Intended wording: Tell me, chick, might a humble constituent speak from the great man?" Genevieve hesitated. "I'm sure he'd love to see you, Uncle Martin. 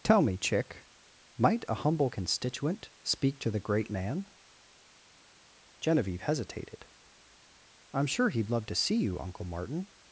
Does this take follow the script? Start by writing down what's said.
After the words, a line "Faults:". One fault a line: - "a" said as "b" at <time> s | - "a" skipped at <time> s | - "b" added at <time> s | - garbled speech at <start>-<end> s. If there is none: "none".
Tell me, chick, might a humble constituent speak to the great man?" Genevieve hesitated. "I'm sure he'd love to see you, Uncle Martin.
Faults:
- "from" said as "to" at 3.4 s